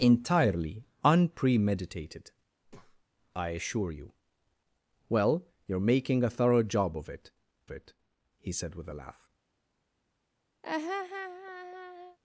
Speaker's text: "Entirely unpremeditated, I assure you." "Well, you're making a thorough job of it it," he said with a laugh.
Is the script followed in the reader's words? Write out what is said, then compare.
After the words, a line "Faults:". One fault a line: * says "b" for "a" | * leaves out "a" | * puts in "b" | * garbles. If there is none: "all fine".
"Entirely unpremeditated, I assure you." "Well, you're making a thorough job of it it," he said with a laugh.
Faults:
all fine